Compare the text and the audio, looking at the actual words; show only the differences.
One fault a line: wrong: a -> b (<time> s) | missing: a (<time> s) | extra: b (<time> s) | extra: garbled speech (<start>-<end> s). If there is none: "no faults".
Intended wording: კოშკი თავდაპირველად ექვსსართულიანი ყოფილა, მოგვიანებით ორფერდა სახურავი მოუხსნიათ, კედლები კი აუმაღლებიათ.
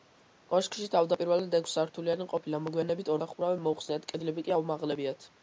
missing: ორფერდა (3.1 s)